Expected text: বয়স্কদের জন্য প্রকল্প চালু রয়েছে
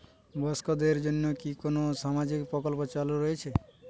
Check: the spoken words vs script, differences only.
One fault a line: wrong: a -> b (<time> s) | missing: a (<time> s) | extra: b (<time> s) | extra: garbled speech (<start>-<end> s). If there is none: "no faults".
extra: কি কোন সামাজিক (1.4 s)